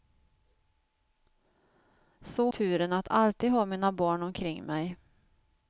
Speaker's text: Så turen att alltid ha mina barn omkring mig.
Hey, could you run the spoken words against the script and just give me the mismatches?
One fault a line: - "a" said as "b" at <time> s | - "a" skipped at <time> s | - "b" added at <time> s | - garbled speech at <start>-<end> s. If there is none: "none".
none